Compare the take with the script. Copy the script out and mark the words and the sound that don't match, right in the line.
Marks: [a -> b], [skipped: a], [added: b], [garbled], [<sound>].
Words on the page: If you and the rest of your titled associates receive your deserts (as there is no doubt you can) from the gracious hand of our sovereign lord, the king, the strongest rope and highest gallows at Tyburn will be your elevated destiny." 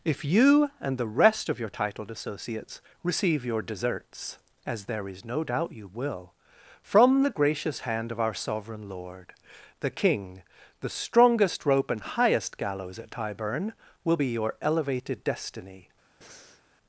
If you and the rest of your titled associates receive your deserts (as there is no doubt you [can) -> will] from the gracious hand of our sovereign lord, the king, the strongest rope and highest gallows at Tyburn will be your elevated destiny." [breath]